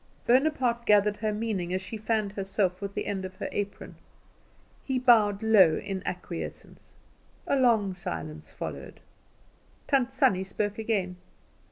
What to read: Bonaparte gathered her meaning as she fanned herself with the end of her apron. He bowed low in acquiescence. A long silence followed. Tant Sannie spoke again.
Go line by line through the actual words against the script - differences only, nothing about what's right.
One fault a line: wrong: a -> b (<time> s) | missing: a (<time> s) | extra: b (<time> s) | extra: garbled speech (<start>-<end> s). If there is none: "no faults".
no faults